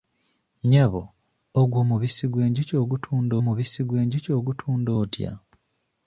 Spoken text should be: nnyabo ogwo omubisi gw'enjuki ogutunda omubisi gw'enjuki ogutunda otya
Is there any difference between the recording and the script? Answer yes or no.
no